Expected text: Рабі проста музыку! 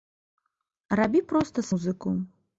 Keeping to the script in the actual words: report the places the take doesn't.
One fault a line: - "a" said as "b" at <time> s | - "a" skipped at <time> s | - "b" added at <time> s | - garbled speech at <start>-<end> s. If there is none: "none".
none